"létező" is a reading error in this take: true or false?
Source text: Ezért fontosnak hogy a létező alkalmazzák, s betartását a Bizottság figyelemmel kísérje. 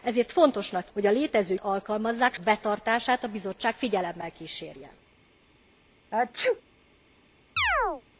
false